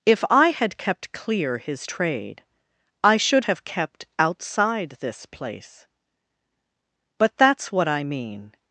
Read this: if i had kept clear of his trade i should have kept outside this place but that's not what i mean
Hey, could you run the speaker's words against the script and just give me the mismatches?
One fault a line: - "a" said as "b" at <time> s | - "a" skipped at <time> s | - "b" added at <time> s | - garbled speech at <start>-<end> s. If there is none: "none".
- "of" skipped at 1.6 s
- "not" skipped at 7.7 s